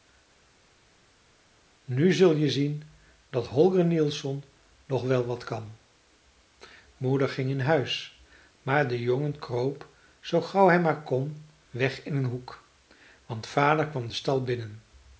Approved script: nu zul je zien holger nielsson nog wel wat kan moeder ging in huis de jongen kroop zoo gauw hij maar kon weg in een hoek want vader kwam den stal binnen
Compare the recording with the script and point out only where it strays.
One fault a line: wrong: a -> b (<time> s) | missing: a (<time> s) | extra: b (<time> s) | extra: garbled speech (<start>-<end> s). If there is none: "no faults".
extra: dat (3.3 s)
extra: maar (8.6 s)